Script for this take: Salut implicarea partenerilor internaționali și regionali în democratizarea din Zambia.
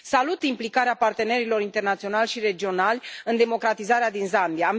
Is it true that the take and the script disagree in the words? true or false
false